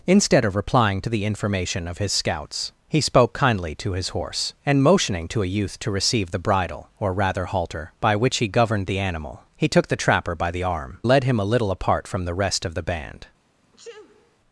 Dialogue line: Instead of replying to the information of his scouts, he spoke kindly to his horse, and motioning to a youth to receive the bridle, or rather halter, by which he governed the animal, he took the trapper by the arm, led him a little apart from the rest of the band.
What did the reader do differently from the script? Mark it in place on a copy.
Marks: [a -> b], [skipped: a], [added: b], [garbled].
Instead of replying to the information of his scouts, he spoke kindly to his horse, and motioning to a youth to receive the bridle, or rather halter, by which he governed the animal, he took the trapper by the arm, led him a little apart from the rest of the band.